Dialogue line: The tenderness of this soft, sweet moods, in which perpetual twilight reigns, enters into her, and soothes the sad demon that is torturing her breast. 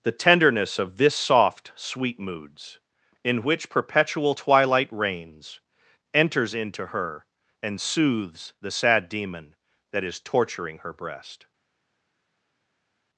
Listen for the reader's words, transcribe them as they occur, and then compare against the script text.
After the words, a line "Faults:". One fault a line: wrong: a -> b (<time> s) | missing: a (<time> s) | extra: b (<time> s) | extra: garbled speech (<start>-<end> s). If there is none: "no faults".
The tenderness of this soft, sweet moods, in which perpetual twilight reigns, enters into her, and soothes the sad demon that is torturing her breast.
Faults:
no faults